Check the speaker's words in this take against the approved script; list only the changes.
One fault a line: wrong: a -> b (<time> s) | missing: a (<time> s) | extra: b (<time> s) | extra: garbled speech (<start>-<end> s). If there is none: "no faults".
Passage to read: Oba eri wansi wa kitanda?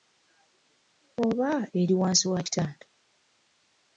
no faults